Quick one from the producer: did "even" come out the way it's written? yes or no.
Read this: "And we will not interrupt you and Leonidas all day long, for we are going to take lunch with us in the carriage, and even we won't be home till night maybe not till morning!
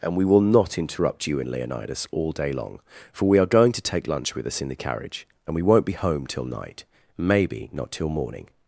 no